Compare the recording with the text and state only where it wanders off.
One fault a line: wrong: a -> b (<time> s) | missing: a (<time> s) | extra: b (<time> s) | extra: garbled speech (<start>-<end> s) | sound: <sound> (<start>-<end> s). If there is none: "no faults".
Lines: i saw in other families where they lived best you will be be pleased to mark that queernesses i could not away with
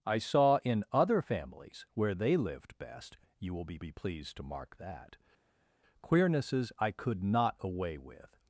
no faults